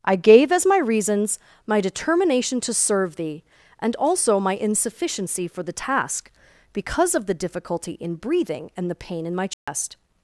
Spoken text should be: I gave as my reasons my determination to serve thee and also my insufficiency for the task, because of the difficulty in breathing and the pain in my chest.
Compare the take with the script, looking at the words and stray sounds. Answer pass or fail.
fail